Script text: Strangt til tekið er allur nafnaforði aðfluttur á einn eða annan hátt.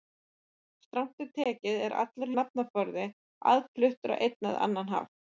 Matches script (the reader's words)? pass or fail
pass